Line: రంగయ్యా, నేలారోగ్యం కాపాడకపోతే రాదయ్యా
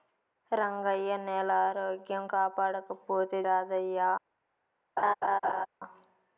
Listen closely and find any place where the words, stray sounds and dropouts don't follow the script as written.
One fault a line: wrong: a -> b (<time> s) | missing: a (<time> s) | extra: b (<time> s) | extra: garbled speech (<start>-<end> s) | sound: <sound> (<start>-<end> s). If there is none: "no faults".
sound: laugh (5.0-5.7 s)